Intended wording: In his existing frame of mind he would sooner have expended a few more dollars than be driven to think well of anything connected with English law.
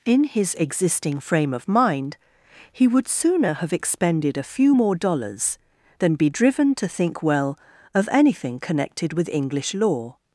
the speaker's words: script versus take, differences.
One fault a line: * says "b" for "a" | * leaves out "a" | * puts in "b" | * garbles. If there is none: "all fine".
all fine